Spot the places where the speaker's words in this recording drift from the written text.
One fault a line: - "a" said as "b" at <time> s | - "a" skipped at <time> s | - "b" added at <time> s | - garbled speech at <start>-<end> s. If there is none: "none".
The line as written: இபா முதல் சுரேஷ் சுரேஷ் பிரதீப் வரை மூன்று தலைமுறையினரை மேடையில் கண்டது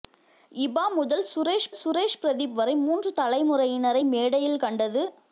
none